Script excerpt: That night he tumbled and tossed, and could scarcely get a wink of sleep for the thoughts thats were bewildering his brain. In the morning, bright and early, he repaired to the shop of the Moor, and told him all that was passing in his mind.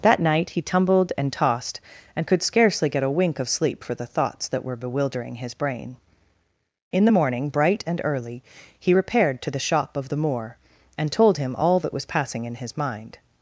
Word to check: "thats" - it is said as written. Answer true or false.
false